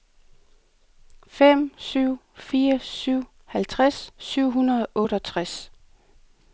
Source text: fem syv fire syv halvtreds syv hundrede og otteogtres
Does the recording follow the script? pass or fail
pass